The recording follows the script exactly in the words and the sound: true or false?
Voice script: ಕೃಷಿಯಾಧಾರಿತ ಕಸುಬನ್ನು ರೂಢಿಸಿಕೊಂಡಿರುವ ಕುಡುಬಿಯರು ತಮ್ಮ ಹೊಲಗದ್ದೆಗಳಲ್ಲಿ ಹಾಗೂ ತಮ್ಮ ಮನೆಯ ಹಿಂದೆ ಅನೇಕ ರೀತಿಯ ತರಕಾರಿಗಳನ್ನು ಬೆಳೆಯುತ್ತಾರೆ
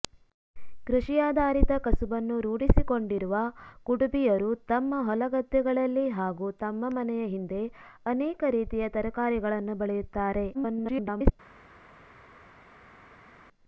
false